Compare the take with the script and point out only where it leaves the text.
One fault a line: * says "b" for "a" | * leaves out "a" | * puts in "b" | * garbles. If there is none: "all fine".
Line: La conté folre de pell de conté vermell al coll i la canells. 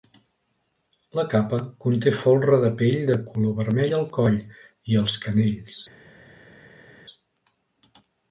* puts in "capa"
* says "color" for "conté"
* says "els" for "la"